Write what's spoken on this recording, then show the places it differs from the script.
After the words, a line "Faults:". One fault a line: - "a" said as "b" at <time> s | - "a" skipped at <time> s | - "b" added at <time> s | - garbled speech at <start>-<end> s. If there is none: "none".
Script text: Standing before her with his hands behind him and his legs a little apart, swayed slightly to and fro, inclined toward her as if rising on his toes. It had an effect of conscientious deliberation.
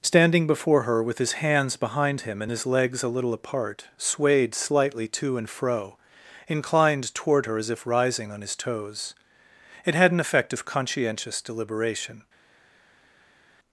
Standing before her with his hands behind him and his legs a little apart, swayed slightly to and fro, inclined toward her as if rising on his toes. It had an effect of conscientious deliberation.
Faults:
none